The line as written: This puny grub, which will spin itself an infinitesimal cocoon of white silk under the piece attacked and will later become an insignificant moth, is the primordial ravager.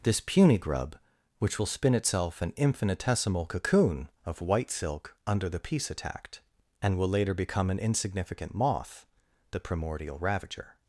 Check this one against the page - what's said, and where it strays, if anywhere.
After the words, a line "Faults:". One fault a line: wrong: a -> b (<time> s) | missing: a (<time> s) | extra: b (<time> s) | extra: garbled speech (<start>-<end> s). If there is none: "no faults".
This puny grub, which will spin itself an infinitesimal cocoon of white silk under the piece attacked and will later become an insignificant moth, the primordial ravager.
Faults:
missing: is (9.1 s)